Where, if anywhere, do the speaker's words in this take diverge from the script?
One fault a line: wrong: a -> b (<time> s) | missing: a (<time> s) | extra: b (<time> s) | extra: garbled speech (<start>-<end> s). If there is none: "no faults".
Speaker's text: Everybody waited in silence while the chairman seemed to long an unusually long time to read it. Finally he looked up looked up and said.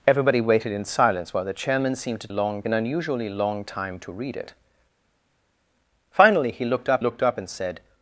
no faults